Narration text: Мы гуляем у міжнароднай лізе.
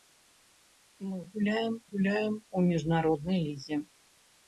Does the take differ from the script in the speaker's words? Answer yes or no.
yes